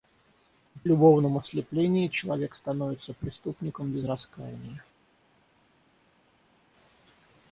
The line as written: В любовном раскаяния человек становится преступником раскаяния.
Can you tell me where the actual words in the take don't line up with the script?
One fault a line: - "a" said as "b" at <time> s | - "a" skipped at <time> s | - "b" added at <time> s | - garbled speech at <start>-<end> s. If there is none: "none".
- "раскаяния" said as "ослеплении" at 1.4 s
- "без" added at 3.9 s